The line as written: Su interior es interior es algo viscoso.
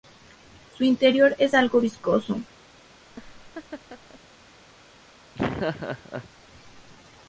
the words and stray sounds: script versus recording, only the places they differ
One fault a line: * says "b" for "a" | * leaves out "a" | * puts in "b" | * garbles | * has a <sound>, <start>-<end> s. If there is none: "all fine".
* leaves out "interior es"
* has a laugh, 3.1-4.2 s
* has a laugh, 5.3-6.3 s